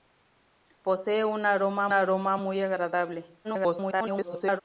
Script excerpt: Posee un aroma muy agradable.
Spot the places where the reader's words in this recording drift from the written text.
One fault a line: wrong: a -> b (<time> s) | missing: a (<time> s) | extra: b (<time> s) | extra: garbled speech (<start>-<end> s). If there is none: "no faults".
extra: aroma (1.9 s)
extra: garbled speech (3.4-4.6 s)